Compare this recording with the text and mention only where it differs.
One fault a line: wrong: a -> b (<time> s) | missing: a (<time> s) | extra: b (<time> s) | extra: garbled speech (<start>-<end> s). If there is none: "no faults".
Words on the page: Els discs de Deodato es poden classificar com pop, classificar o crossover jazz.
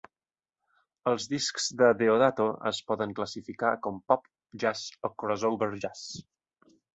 wrong: classificar -> jazz (4.7 s)